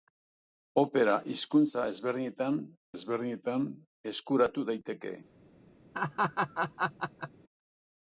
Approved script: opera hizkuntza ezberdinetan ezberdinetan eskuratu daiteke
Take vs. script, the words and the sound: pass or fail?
fail